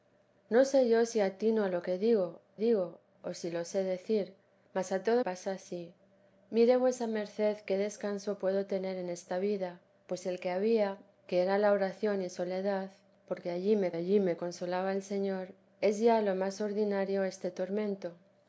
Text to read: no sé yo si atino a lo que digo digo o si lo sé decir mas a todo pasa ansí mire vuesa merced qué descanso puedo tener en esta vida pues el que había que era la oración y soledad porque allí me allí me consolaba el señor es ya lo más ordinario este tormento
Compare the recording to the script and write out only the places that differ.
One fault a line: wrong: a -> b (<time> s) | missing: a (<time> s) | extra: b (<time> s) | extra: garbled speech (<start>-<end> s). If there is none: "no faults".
no faults